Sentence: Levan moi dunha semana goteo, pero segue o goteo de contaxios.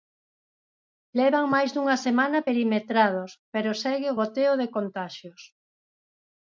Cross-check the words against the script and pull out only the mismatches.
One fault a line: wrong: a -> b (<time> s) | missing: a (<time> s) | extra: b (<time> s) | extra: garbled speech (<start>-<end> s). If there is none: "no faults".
wrong: moi -> máis (1.5 s)
wrong: goteo -> perimetrados (2.5 s)